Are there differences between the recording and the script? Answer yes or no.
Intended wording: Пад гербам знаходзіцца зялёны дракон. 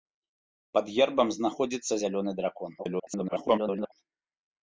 yes